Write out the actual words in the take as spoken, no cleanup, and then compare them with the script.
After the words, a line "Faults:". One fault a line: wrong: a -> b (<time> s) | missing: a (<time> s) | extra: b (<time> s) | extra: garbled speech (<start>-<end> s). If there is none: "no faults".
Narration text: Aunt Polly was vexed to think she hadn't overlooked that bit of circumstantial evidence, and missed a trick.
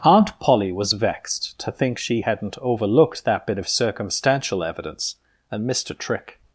Aunt Polly was vexed to think she hadn't overlooked that bit of circumstantial evidence, and missed a trick.
Faults:
no faults